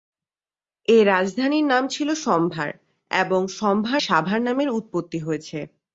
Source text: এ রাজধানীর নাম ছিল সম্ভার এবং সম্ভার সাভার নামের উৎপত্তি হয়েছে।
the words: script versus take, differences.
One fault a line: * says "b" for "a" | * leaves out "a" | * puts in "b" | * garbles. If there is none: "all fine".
all fine